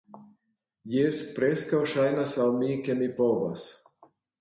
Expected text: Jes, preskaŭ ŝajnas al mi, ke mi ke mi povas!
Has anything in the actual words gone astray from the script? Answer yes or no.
yes